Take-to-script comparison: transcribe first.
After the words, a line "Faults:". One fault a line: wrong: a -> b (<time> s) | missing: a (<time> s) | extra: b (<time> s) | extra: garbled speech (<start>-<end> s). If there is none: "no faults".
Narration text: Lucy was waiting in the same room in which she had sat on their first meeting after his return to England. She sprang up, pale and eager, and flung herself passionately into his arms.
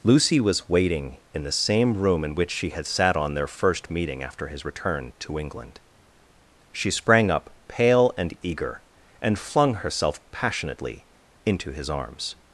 Lucy was waiting in the same room in which she had sat on their first meeting after his return to England. She sprang up, pale and eager, and flung herself passionately into his arms.
Faults:
no faults